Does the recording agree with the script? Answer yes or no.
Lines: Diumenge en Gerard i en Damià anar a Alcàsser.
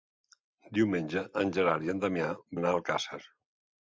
yes